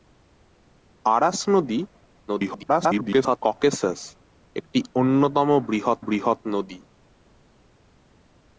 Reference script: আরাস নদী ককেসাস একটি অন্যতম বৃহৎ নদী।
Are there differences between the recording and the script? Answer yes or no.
yes